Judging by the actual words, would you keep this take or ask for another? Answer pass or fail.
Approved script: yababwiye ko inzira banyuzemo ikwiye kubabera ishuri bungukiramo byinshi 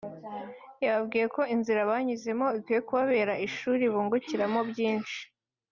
pass